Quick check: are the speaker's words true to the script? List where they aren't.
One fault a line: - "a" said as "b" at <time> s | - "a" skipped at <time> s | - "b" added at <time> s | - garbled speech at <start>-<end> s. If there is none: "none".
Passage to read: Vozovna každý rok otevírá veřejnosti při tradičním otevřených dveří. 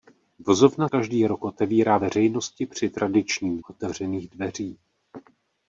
none